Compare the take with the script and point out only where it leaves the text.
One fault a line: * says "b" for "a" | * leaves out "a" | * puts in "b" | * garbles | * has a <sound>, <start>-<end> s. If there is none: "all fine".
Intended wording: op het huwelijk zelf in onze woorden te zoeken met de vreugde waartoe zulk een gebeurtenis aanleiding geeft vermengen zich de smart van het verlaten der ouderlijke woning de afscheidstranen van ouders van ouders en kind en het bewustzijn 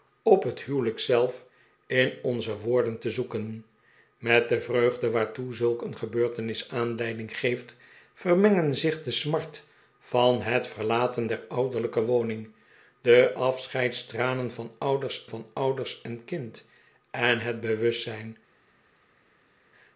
all fine